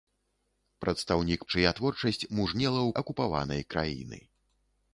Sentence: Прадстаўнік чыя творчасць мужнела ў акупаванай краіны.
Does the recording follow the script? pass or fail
pass